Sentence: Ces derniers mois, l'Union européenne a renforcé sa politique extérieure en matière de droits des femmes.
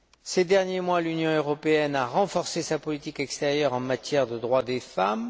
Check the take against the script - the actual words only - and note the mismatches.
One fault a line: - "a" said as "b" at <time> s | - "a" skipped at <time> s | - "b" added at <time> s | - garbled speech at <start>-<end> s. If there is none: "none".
none